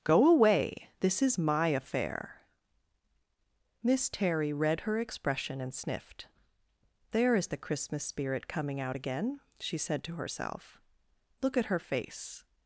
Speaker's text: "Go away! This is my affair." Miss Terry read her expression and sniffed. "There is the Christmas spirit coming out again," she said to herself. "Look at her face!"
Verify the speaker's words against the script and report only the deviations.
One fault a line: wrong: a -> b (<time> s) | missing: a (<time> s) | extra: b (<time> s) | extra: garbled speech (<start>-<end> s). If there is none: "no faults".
no faults